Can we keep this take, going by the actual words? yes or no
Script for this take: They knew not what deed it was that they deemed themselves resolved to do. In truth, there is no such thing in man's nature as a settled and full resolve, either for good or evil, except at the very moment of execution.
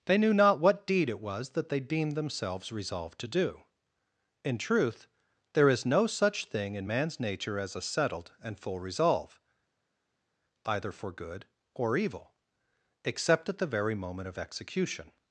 yes